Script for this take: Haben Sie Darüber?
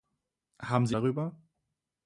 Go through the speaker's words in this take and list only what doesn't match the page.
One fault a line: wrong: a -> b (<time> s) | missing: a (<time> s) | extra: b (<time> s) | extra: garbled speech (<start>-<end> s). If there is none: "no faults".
no faults